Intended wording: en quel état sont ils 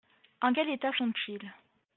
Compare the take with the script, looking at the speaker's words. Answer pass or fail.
pass